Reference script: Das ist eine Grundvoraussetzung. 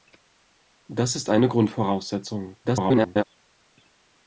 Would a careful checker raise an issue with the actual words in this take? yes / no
yes